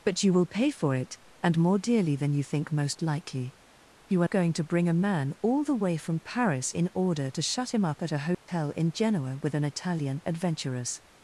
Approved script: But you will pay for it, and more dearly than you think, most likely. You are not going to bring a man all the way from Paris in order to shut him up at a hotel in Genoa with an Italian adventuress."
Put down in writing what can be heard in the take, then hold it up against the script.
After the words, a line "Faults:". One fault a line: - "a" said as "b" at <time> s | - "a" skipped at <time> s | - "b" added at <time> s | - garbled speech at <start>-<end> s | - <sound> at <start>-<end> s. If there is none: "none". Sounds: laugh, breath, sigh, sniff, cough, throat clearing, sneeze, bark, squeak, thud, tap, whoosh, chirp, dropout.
But you will pay for it, and more dearly than you think, most likely. You are going to bring a man all the way from Paris in order to shut him up at a hotel in Genoa with an Italian adventuress."
Faults:
- "not" skipped at 4.3 s
- dropout at 8.3-8.5 s